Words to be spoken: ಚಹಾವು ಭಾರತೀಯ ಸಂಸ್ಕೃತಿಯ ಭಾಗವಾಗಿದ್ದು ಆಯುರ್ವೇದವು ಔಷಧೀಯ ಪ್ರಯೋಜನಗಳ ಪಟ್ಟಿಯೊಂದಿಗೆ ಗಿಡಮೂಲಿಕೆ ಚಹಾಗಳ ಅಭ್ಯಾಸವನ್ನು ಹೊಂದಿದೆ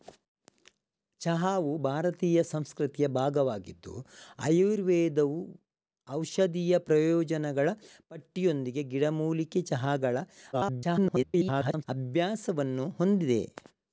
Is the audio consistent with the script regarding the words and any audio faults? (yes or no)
no